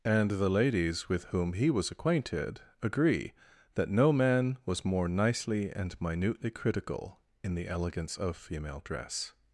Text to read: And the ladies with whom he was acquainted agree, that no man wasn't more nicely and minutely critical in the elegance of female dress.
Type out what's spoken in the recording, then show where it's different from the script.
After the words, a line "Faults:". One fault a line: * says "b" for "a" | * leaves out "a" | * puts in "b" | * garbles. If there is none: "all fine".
And the ladies with whom he was acquainted agree, that no man was more nicely and minutely critical in the elegance of female dress.
Faults:
* says "was" for "wasn't"